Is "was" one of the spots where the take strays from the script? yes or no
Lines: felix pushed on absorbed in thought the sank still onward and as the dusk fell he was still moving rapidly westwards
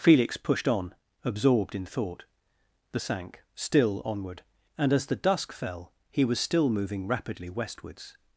no